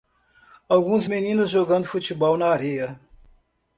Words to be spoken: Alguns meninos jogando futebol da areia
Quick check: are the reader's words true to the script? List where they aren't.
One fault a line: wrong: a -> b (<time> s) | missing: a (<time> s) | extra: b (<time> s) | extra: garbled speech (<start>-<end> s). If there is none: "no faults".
wrong: da -> na (2.4 s)